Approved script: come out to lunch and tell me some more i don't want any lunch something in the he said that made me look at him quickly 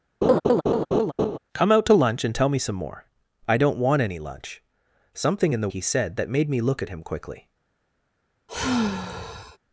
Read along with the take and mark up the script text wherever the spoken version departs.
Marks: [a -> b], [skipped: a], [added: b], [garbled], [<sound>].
[laugh] come out to lunch and tell me some more i don't want any lunch something in the he said that made me look at him quickly [sigh]